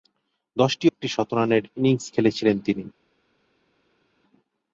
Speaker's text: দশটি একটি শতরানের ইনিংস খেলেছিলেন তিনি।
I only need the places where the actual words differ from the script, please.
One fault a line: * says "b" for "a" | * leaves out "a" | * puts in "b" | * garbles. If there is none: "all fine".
all fine